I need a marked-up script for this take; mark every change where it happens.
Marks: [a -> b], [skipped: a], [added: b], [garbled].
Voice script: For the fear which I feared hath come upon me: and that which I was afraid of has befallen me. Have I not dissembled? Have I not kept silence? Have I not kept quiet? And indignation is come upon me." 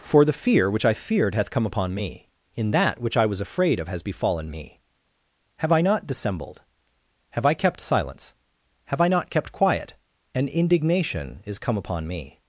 For the fear which I feared hath come upon me: [and -> in] that which I was afraid of has befallen me. Have I not dissembled? Have I [skipped: not] kept silence? Have I not kept quiet? And indignation is come upon me."